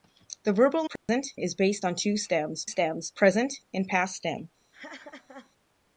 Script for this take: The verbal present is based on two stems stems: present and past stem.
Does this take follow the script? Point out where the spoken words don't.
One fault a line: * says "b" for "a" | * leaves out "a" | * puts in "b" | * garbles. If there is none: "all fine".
all fine